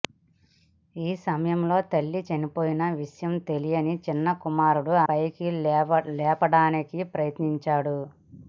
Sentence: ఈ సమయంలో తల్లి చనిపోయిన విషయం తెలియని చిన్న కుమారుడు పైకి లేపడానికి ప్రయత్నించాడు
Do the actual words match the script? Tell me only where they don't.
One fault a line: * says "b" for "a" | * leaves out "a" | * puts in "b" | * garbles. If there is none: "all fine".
all fine